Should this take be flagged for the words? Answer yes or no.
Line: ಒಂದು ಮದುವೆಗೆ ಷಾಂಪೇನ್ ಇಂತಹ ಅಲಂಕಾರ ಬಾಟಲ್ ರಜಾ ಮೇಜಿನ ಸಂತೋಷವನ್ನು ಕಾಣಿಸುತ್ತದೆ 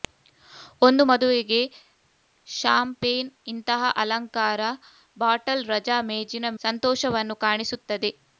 no